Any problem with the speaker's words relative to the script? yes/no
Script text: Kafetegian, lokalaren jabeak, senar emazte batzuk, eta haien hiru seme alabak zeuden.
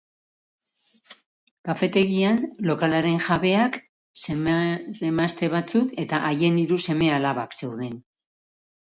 no